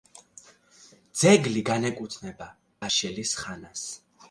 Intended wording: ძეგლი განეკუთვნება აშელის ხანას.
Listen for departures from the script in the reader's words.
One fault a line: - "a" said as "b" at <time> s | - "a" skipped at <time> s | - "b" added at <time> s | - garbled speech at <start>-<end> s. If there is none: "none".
none